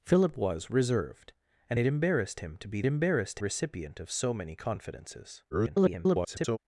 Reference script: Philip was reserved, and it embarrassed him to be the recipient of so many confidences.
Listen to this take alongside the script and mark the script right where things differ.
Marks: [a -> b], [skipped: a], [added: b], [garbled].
Philip was reserved, and it embarrassed him to be [the -> embarrassed] recipient of so many confidences. [garbled]